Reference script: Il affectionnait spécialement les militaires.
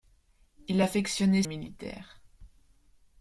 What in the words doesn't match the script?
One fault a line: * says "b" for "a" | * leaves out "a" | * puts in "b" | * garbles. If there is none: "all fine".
* leaves out "spécialement les"